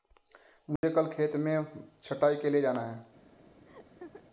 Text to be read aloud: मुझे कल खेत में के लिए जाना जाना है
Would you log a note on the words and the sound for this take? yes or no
yes